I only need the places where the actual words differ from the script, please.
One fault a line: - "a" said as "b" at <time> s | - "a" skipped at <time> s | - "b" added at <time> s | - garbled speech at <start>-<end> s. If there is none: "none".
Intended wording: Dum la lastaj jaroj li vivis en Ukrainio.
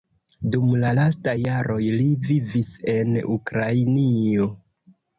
none